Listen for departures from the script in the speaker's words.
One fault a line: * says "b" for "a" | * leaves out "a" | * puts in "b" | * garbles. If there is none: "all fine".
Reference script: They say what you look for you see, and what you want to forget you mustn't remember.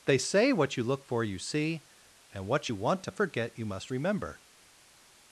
* says "must" for "mustn't"